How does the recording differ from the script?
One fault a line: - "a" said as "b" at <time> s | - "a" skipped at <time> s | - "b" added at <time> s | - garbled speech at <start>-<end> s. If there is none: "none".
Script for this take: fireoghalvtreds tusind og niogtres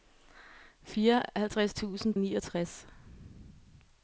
none